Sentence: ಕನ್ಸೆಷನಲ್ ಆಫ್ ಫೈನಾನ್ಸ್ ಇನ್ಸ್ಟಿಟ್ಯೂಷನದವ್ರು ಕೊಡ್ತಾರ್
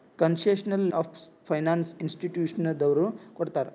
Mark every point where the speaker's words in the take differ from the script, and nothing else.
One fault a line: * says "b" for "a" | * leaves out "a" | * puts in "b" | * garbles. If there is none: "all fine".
all fine